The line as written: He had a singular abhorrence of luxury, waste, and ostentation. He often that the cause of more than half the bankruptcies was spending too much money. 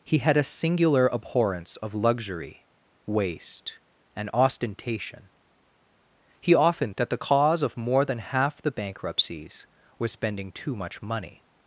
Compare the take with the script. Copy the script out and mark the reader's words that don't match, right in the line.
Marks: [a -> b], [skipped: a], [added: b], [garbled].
He had a singular abhorrence of luxury, waste, and ostentation. He often that the cause of more than half the bankruptcies was spending too much money.